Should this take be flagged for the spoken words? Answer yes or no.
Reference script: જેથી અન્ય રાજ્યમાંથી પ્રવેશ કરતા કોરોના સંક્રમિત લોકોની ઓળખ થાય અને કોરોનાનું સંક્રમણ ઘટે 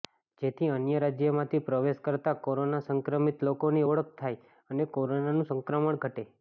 no